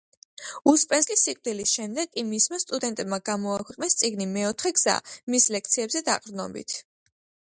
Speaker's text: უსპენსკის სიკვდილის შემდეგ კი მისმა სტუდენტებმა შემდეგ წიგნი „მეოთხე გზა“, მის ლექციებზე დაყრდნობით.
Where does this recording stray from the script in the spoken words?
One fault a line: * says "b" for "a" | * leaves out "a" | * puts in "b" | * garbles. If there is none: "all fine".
* says "გამოაქვეყნეს" for "შემდეგ"